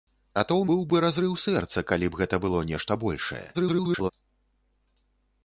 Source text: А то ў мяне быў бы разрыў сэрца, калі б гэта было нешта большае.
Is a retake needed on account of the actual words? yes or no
yes